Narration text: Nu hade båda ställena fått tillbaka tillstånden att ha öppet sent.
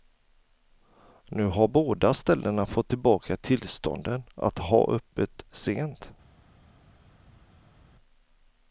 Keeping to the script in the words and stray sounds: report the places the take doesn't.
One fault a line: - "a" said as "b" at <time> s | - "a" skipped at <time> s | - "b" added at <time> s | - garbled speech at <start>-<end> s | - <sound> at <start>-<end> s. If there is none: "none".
- "hade" said as "har" at 1.4 s